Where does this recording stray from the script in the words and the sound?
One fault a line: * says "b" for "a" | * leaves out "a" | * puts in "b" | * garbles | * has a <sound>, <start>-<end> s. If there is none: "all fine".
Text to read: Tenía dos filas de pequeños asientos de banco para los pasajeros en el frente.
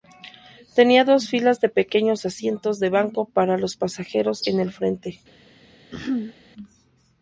* has a throat clearing, 5.9-6.3 s